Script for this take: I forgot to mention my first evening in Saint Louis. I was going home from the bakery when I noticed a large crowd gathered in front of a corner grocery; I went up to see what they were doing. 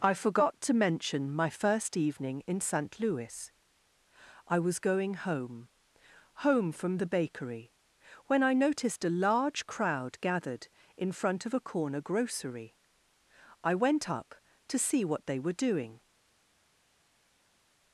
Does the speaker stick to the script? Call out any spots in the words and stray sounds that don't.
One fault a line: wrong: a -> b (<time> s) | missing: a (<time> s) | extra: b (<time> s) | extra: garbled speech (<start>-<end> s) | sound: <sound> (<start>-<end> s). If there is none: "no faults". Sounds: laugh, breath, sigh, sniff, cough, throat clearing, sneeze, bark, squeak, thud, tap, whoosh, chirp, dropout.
extra: home (6.4 s)